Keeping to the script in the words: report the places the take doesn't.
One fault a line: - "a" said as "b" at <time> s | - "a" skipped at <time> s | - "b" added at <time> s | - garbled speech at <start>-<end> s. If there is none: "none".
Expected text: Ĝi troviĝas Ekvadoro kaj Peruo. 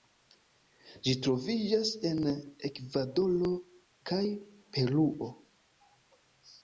- "en" added at 2.1 s